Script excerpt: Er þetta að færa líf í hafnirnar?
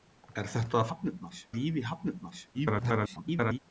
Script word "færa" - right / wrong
wrong